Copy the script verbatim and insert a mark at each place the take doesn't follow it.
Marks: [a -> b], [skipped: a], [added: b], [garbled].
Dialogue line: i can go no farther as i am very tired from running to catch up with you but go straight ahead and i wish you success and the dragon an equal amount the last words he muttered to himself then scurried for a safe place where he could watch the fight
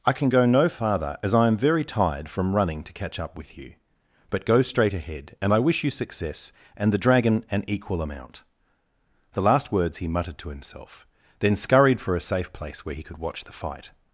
i can go no farther as i am very tired from running to catch up with you but go straight ahead and i wish you success and the dragon an equal amount the last words he muttered to himself then scurried for a safe place where he could watch the fight